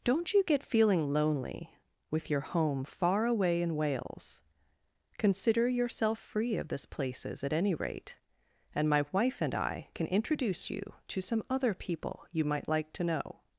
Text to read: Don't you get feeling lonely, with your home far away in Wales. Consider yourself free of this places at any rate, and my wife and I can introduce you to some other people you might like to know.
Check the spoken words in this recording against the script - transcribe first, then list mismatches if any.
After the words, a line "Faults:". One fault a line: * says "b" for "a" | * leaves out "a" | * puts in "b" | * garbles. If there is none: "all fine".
Don't you get feeling lonely, with your home far away in Wales. Consider yourself free of this places at any rate, and my wife and I can introduce you to some other people you might like to know.
Faults:
all fine